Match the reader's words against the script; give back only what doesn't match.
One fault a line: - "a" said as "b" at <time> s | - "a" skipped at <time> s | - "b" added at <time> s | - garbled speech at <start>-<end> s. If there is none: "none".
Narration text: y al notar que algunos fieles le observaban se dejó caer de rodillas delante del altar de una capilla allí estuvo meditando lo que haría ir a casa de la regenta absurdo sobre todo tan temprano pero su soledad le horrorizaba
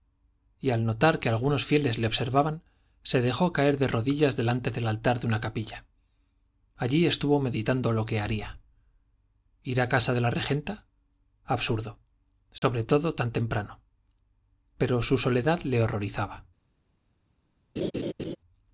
none